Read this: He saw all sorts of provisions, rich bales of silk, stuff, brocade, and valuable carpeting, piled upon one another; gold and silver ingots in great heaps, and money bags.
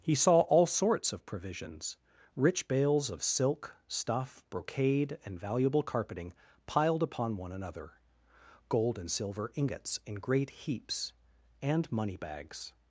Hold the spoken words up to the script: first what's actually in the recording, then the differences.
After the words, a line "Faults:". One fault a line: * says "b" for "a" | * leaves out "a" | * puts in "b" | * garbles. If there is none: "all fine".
He saw all sorts of provisions, rich bales of silk, stuff, brocade, and valuable carpeting, piled upon one another; gold and silver ingots in great heaps, and money bags.
Faults:
all fine